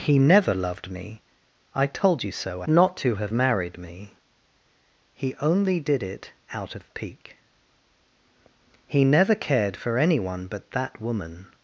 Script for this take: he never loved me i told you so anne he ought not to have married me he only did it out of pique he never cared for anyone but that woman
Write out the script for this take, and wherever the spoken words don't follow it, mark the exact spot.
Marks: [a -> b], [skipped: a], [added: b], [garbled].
he never loved me i told you so [skipped: anne he ought] not to have married me he only did it out of pique he never cared for anyone but that woman